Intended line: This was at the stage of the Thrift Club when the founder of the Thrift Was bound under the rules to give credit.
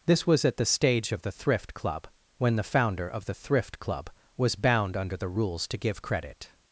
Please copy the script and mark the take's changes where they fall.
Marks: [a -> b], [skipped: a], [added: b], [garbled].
This was at the stage of the Thrift Club when the founder of the Thrift [added: Club] Was bound under the rules to give credit.